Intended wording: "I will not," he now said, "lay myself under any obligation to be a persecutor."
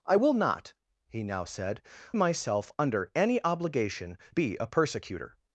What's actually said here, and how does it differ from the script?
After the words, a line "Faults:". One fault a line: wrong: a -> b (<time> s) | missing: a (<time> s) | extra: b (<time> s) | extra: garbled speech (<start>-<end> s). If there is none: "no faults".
"I will not," he now said, "myself under any obligation be a persecutor."
Faults:
missing: lay (1.8 s)
missing: to (4.2 s)